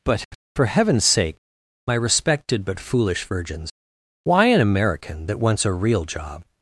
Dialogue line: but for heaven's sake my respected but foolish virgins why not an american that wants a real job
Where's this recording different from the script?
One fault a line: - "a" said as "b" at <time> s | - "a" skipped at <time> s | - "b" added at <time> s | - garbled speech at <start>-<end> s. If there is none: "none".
- "not" skipped at 4.5 s